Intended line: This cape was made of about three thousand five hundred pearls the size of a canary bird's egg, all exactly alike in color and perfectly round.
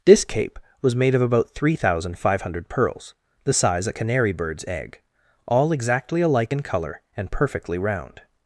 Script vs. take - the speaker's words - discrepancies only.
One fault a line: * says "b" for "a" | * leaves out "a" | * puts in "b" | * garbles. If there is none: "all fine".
* leaves out "of"